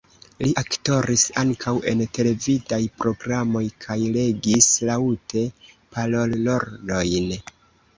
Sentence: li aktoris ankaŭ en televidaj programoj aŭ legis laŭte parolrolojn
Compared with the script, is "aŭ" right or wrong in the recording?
wrong